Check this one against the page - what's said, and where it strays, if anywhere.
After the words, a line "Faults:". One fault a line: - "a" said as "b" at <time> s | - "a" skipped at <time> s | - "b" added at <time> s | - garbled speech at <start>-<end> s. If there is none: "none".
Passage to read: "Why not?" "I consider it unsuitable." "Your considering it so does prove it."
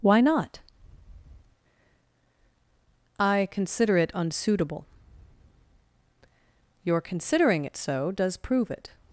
"Why not?" "I consider it unsuitable." "Your considering it so does prove it."
Faults:
none